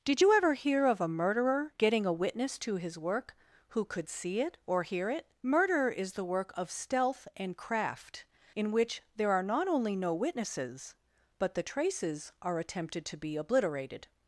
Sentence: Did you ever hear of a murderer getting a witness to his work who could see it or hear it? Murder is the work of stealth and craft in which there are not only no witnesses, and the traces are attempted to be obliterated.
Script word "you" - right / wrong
right